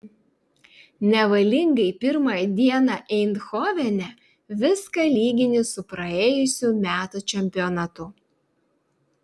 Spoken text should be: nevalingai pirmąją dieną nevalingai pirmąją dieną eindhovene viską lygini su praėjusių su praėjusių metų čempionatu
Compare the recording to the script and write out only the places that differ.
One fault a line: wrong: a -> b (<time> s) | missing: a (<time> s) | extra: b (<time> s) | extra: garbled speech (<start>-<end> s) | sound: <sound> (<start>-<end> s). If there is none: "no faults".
missing: nevalingai pirmąją dieną (3.0 s)
missing: su praėjusių (6.7 s)